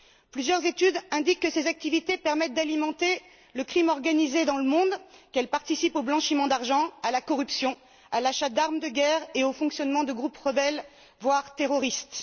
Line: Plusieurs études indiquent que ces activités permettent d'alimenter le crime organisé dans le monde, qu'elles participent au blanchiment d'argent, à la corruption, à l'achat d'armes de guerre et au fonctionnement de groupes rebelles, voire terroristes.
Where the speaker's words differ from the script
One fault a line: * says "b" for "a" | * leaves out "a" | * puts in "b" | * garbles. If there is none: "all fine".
all fine